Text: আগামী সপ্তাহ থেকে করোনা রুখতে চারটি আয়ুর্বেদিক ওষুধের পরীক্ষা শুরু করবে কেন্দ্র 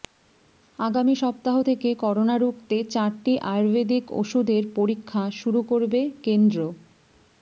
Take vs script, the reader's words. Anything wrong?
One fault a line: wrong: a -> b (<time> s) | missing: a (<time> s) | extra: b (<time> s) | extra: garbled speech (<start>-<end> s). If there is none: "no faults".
no faults